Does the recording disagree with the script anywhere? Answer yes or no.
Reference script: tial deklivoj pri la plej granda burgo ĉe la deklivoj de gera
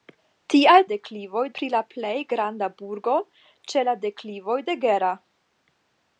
no